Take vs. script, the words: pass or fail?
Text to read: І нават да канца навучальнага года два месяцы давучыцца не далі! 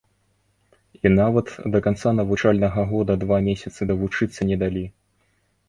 pass